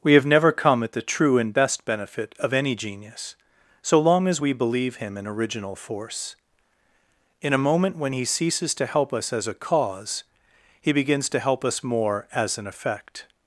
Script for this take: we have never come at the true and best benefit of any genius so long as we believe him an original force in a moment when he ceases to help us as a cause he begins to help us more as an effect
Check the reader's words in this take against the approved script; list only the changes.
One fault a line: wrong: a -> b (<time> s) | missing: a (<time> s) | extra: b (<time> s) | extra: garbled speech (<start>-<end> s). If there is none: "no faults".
no faults